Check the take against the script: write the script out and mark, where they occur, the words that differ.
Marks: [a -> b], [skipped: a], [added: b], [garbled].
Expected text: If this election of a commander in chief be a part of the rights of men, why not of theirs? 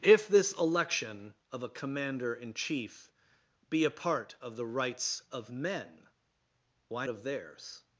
If this election of a commander in chief be a part of the rights of men, why [skipped: not] of theirs?